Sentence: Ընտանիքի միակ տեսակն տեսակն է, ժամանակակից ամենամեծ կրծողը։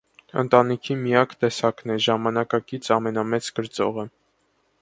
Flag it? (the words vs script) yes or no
yes